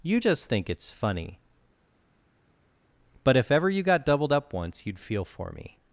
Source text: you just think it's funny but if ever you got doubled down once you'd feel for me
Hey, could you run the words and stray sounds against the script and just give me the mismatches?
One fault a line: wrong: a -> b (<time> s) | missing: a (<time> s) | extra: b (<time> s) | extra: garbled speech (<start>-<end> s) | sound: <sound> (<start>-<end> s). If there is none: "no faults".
wrong: down -> up (4.3 s)